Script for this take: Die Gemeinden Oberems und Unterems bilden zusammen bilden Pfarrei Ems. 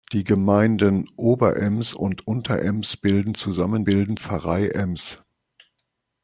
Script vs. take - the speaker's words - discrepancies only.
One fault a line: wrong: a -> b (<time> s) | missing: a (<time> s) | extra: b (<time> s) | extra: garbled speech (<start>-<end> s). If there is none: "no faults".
no faults